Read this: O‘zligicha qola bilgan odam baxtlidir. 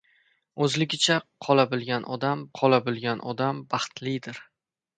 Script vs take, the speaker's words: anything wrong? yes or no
yes